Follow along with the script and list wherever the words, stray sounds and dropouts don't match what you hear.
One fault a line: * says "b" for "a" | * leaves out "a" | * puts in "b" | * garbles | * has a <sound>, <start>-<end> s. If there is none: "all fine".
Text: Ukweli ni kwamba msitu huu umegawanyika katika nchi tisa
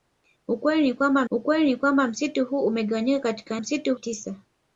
* puts in "ukweli ni kwamba"
* says "msitu" for "nchi"